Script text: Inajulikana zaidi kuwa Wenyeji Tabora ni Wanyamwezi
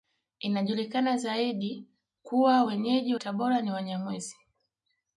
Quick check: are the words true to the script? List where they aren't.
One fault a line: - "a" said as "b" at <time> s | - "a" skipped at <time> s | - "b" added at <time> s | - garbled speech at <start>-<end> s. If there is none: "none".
none